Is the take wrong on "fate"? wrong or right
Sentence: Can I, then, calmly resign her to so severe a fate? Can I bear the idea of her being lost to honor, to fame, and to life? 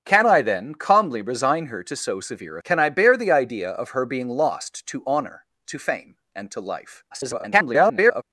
wrong